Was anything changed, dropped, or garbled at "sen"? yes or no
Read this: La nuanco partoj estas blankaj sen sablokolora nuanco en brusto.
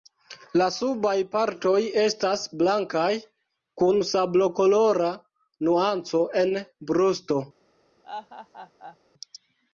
yes